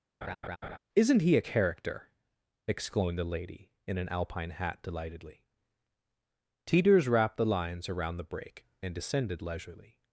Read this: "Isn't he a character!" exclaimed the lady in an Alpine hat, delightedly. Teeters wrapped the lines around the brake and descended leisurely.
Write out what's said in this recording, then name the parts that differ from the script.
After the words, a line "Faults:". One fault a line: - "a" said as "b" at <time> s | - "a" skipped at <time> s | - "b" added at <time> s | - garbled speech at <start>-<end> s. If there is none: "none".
"Isn't he a character!" exclaimed the lady in an Alpine hat, delightedly. Teeters wrapped the lines around the brake and descended leisurely.
Faults:
none